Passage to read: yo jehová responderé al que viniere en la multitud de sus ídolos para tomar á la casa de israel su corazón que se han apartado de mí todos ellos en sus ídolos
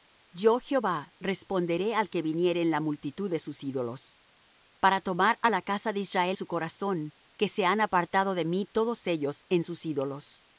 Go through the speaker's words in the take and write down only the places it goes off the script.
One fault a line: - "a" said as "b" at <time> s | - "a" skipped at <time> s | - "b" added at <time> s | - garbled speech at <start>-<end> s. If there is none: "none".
none